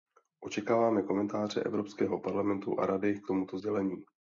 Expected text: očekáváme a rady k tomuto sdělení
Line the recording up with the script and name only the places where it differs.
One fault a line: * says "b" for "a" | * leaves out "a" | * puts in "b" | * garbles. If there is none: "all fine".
* puts in "komentáře evropského parlamentu"